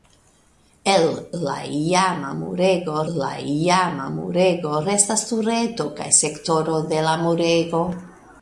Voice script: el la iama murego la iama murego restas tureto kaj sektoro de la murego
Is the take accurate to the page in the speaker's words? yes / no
yes